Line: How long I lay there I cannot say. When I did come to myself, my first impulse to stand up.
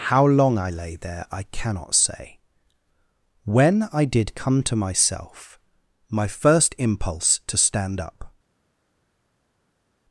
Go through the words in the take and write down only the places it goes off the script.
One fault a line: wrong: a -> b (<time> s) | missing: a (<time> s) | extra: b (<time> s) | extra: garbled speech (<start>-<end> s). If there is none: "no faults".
no faults